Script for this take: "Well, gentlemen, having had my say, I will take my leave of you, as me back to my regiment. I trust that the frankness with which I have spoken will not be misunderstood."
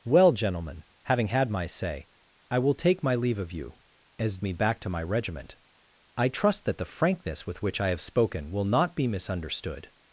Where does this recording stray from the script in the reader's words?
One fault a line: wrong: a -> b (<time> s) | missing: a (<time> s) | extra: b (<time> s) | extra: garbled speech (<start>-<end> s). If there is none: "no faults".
no faults